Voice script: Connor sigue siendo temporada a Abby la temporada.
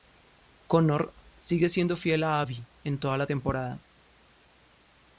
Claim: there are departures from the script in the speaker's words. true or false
true